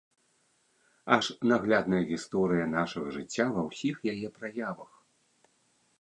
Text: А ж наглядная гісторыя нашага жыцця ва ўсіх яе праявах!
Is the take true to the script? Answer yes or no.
yes